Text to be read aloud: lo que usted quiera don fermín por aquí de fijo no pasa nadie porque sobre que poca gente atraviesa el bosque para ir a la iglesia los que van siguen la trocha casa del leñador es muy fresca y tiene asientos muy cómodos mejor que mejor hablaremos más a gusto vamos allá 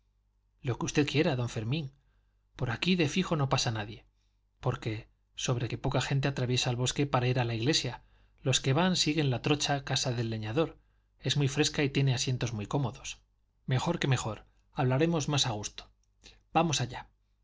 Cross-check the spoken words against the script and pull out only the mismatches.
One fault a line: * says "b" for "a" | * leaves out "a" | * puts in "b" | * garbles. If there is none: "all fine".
all fine